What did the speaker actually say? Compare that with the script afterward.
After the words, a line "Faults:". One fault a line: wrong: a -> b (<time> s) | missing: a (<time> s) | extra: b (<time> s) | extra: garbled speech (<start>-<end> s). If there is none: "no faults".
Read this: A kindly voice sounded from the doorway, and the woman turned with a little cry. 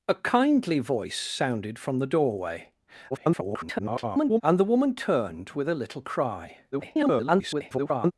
A kindly voice sounded from the doorway, [garbled] and the woman turned with a little cry. [garbled]
Faults:
extra: garbled speech (3.1-4.4 s)
extra: garbled speech (6.7-8.1 s)